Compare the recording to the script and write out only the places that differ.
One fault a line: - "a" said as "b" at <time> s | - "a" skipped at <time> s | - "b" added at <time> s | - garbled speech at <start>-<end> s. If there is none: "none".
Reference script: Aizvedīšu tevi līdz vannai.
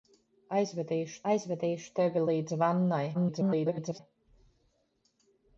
- "aizvedīšu" added at 1.3 s
- garbled speech at 3.1-4.0 s